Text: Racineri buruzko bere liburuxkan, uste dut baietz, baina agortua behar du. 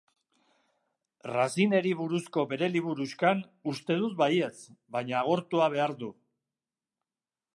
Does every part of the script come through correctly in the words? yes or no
yes